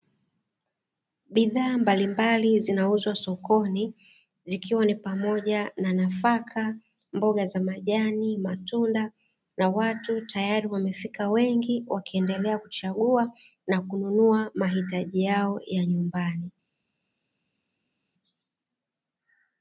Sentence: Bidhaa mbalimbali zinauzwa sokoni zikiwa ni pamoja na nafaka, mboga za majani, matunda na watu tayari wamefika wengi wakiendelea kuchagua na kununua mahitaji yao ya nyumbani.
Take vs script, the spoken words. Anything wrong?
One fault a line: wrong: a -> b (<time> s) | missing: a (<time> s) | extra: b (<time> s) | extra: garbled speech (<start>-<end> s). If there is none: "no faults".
no faults